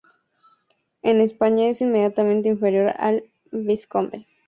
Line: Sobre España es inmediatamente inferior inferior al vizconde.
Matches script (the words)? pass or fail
fail